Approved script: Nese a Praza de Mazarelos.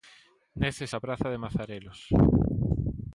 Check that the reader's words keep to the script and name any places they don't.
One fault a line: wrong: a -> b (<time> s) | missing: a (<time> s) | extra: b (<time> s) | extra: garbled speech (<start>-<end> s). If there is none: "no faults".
no faults